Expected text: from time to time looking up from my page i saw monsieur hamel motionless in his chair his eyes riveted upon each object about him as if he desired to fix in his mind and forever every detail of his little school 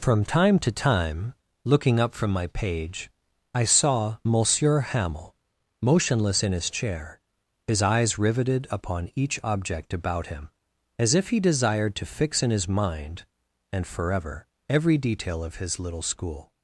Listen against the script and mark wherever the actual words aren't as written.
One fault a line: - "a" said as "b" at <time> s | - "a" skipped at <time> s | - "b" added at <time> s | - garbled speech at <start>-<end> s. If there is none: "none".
none